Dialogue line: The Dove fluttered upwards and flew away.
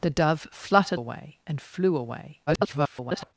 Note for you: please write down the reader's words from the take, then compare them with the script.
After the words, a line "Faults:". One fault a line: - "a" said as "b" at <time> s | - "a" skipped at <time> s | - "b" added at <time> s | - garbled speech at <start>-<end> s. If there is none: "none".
The Dove fluttered away and flew away. [garbled]
Faults:
- "upwards" said as "away" at 0.9 s
- garbled speech at 2.5-3.3 s